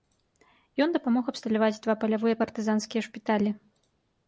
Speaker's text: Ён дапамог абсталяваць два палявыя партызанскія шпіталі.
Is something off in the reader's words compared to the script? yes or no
no